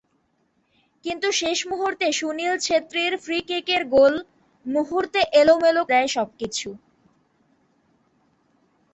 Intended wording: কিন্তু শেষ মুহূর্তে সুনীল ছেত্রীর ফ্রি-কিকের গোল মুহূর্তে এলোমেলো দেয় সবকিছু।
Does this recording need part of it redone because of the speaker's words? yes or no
no